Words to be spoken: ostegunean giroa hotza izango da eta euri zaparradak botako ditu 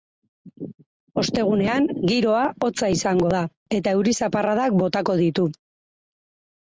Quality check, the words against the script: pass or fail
pass